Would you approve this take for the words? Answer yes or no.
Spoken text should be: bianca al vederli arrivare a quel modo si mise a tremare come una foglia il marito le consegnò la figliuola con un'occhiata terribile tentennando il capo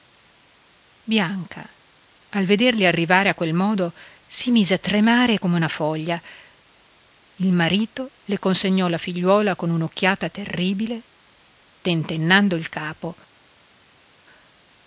yes